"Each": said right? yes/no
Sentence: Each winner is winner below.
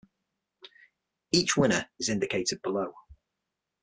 yes